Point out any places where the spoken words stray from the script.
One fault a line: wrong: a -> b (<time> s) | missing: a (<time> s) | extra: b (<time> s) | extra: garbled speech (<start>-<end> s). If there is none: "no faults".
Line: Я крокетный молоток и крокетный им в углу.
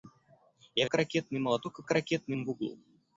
no faults